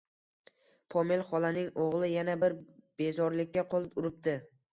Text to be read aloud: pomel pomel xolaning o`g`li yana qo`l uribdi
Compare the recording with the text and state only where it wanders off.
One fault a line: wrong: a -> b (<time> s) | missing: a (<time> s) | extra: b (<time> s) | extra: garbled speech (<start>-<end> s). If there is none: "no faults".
missing: pomel (1.2 s)
extra: bir bezorilikka (2.4 s)